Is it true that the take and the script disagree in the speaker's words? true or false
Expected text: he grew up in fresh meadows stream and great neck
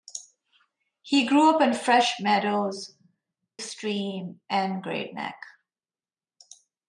false